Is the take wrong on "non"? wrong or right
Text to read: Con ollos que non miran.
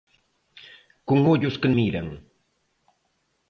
wrong